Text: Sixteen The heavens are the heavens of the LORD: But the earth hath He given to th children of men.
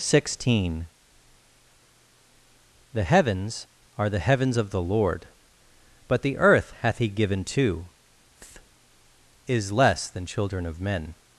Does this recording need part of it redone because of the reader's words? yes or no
yes